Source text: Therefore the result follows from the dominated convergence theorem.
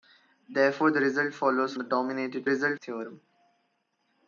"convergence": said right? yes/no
no